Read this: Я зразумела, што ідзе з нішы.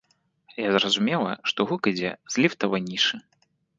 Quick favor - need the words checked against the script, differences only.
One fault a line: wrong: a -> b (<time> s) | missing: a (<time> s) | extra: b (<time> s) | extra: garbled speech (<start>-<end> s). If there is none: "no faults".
extra: гук (1.7 s)
extra: ліфтавай (2.5 s)